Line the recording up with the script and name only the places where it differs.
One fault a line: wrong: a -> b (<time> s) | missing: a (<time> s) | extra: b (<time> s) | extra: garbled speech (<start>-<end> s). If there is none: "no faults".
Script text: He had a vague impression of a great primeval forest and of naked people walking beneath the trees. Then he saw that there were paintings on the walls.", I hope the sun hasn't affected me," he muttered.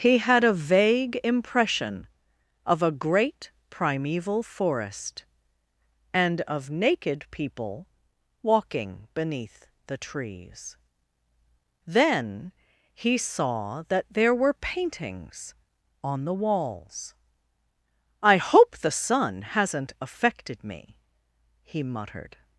no faults